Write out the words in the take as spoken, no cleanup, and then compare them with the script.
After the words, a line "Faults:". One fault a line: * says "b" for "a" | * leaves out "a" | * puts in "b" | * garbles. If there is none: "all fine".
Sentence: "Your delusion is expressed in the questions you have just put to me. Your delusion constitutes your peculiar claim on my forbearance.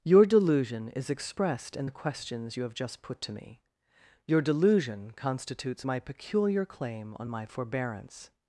"Your delusion is expressed in the questions you have just put to me. Your delusion constitutes my peculiar claim on my forbearance.
Faults:
* says "my" for "your"